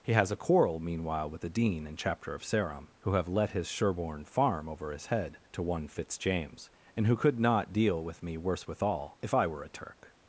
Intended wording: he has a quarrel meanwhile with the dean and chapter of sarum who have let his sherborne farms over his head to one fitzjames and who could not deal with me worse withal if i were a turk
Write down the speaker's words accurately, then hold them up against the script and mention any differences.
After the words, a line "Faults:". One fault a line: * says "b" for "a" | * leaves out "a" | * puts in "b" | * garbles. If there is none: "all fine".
he has a quarrel meanwhile with the dean and chapter of sarum who have let his sherborne farm over his head to one fitzjames and who could not deal with me worse withal if i were a turk
Faults:
* says "farm" for "farms"